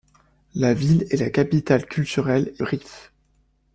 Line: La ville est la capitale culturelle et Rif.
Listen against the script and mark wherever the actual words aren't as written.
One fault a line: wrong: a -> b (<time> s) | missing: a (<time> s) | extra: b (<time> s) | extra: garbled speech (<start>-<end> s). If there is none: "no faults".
no faults